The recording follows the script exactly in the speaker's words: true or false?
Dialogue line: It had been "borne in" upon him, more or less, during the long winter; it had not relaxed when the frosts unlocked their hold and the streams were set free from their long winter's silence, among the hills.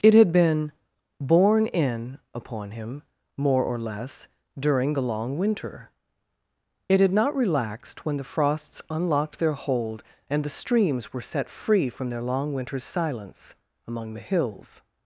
true